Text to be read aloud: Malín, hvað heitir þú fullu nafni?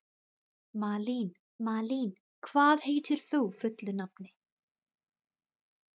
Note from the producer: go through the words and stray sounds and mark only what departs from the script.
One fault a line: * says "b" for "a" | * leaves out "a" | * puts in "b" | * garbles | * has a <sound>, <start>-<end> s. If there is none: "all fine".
* puts in "malín"